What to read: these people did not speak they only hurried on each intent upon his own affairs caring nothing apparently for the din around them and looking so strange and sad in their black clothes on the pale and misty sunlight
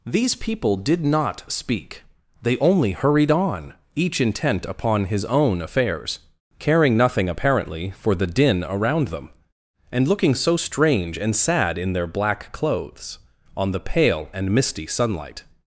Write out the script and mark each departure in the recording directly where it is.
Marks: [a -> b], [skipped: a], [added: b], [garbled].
these people did not speak they only hurried on each intent upon his own affairs caring nothing apparently for the din around them and looking so strange and sad in their black clothes on the pale and misty sunlight